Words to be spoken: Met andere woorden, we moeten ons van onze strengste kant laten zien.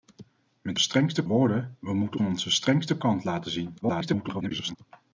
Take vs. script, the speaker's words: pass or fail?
fail